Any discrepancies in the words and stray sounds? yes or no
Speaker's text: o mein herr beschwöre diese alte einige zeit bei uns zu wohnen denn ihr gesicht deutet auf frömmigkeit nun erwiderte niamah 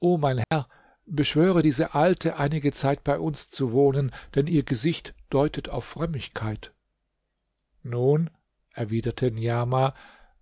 yes